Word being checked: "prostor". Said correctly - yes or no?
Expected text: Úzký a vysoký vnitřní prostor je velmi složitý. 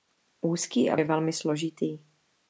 no